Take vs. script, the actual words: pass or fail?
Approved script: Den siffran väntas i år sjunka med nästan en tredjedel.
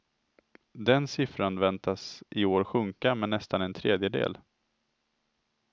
pass